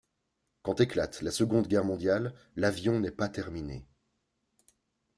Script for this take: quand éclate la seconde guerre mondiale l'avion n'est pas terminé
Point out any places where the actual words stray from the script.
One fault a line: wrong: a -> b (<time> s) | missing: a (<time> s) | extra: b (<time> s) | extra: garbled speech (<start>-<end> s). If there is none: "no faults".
no faults